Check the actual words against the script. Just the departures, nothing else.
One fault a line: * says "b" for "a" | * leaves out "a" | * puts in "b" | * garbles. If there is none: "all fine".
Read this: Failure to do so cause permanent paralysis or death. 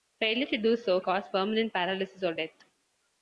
all fine